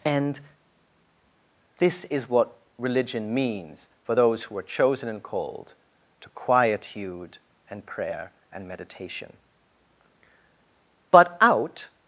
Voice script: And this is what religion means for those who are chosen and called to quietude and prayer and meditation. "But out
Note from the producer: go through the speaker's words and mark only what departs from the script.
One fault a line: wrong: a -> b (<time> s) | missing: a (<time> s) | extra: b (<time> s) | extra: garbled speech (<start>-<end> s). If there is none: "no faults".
no faults